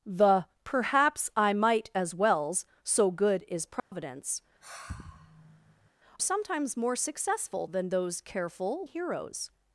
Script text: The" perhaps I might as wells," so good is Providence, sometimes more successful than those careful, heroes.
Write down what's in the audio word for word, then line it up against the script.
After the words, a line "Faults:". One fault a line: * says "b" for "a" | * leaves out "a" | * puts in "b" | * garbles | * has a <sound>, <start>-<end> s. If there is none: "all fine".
The" perhaps I might as wells," so good is Providence, sometimes more successful than those careful, heroes.
Faults:
* has a dropout, 3.8-3.9 s
* has a sigh, 4.6-5.9 s